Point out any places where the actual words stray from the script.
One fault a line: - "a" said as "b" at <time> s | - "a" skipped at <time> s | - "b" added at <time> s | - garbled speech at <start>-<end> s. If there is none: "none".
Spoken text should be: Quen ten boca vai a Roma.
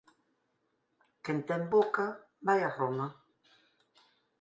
none